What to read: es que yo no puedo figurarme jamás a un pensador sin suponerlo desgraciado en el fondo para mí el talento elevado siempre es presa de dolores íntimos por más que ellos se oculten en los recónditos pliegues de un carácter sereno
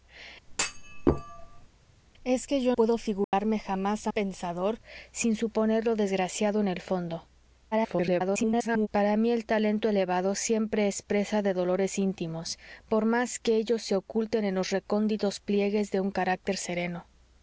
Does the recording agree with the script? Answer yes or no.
no